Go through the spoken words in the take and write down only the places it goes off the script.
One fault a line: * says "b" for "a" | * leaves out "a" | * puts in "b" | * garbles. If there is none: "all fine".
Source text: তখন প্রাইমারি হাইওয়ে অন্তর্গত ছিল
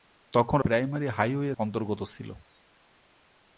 all fine